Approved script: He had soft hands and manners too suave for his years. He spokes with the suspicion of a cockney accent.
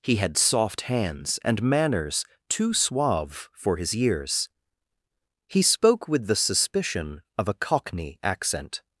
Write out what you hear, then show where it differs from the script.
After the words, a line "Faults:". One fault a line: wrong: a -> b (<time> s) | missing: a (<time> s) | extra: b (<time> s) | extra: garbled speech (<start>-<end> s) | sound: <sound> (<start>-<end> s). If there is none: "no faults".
He had soft hands and manners too suave for his years. He spoke with the suspicion of a cockney accent.
Faults:
wrong: spokes -> spoke (5.6 s)